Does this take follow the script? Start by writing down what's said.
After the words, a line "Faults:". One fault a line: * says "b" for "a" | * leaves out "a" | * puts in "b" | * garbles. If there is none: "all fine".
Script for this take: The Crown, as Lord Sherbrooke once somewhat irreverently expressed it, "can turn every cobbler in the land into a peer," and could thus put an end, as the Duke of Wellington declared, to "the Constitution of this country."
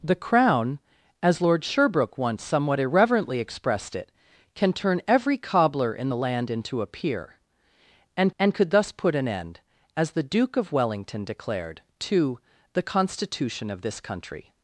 The Crown, as Lord Sherbrooke once somewhat irreverently expressed it, "can turn every cobbler in the land into a peer," and and could thus put an end, as the Duke of Wellington declared, to "the Constitution of this country."
Faults:
* puts in "and"